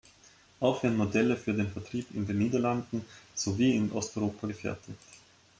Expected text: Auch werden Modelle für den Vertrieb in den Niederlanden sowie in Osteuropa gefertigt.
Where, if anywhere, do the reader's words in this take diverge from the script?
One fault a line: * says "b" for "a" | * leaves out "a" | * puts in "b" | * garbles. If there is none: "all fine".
all fine